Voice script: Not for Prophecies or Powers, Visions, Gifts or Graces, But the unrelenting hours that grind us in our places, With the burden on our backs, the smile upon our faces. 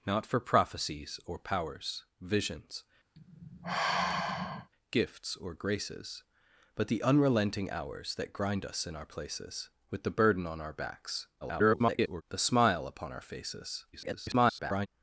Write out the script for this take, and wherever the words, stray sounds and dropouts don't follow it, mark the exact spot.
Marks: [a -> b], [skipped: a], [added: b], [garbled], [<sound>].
Not for Prophecies or Powers, Visions, [sigh] Gifts or Graces, But the unrelenting hours that grind us in our places, With the burden on our backs, [garbled] the smile upon our faces. [garbled]